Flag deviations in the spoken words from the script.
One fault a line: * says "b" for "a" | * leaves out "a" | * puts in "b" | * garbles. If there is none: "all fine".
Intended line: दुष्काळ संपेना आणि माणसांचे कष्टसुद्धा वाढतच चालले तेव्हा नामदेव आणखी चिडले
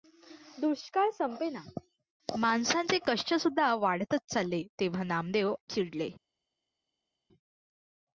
* leaves out "आणि"
* leaves out "आणखी"